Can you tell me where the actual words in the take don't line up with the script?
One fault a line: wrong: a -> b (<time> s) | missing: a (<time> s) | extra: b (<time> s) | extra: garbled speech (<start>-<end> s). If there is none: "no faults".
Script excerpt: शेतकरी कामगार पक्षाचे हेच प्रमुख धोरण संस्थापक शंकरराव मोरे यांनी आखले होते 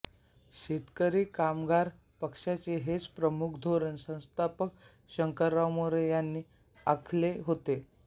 no faults